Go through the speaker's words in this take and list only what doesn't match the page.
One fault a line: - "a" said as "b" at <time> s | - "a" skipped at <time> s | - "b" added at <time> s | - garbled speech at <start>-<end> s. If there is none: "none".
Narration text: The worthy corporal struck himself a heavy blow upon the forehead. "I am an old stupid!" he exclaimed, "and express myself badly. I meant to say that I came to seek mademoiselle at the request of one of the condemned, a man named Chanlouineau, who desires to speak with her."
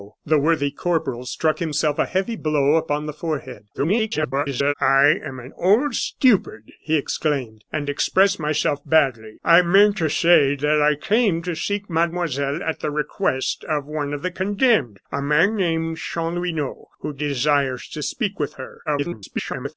- garbled speech at 3.7-4.7 s
- garbled speech at 18.8-19.7 s